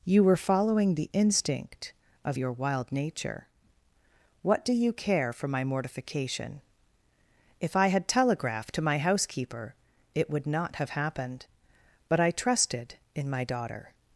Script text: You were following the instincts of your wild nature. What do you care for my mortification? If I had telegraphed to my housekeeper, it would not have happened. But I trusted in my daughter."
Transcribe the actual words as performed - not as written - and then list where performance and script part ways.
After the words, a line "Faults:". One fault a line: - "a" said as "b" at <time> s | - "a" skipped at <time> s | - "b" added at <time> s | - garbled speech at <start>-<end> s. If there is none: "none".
You were following the instinct of your wild nature. What do you care for my mortification? If I had telegraphed to my housekeeper, it would not have happened. But I trusted in my daughter."
Faults:
- "instincts" said as "instinct" at 1.1 s